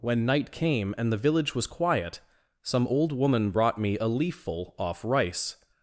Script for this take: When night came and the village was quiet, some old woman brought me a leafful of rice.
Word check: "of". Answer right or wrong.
wrong